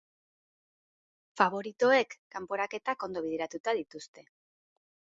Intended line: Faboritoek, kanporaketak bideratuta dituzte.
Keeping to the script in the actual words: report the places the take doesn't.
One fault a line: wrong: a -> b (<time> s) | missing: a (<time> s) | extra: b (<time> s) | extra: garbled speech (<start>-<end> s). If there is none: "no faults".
extra: ondo (3.1 s)